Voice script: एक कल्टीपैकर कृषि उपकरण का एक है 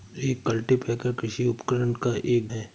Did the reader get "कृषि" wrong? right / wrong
right